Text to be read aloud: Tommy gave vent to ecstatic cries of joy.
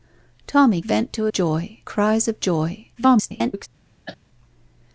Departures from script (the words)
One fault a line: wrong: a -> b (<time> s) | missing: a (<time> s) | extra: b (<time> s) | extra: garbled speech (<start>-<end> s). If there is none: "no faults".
missing: gave (0.8 s)
wrong: ecstatic -> joy (1.3 s)
extra: garbled speech (3.0-3.7 s)